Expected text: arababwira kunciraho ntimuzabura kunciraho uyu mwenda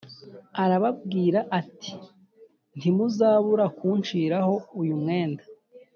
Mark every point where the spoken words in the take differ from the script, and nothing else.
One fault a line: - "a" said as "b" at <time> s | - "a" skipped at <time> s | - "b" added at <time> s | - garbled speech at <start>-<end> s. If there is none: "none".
- "kunciraho" said as "ati" at 1.6 s